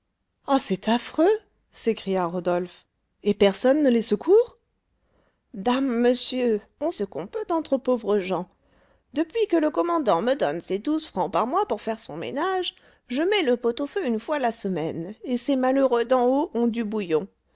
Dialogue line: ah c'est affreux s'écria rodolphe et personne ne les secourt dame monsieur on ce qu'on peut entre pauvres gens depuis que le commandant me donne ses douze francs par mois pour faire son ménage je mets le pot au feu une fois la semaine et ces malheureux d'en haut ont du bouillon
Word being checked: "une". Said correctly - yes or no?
yes